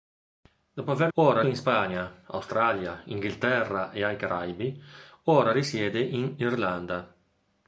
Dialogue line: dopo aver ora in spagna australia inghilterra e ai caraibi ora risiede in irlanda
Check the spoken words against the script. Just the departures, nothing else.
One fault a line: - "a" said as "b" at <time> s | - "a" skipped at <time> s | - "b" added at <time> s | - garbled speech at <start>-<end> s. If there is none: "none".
none